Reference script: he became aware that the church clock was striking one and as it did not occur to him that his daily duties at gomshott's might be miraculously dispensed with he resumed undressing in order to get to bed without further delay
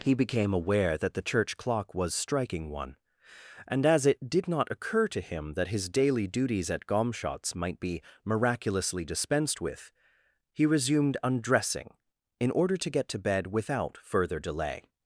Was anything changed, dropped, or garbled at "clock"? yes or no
no